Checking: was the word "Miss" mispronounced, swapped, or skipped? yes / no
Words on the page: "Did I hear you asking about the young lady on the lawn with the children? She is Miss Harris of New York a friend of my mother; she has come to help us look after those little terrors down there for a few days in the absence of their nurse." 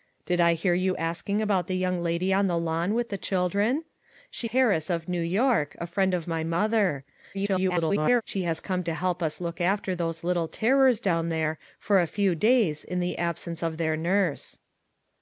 yes